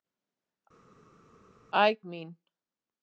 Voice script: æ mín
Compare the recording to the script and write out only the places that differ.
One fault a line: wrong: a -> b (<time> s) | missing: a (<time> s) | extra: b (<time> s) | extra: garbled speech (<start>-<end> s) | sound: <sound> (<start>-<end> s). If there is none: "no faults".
no faults